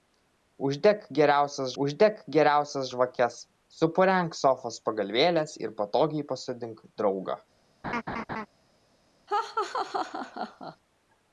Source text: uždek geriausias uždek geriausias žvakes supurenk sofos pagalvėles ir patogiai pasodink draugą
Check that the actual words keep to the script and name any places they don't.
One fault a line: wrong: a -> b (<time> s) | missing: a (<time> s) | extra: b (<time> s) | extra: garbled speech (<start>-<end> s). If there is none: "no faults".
no faults